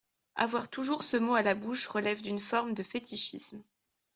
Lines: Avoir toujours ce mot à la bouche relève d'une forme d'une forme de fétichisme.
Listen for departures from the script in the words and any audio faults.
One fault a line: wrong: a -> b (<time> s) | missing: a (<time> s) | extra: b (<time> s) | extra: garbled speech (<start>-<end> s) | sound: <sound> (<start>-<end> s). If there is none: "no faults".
missing: d'une forme (2.7 s)